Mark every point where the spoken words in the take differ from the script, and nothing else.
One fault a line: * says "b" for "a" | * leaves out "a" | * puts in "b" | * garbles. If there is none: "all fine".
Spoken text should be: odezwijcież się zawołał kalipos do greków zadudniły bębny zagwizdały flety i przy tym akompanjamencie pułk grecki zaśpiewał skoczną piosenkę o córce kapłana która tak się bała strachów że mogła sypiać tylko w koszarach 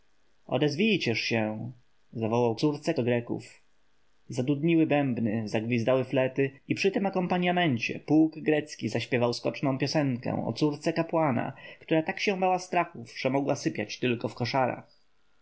* says "córce" for "kalipos"